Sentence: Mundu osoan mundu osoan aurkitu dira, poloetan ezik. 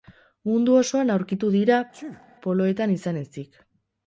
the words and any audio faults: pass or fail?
fail